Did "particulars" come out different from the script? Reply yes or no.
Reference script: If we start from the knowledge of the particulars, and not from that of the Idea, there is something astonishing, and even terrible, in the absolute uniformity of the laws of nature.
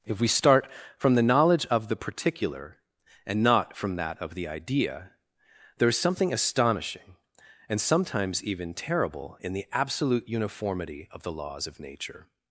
yes